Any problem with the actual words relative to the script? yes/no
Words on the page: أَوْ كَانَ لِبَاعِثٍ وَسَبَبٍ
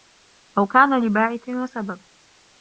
no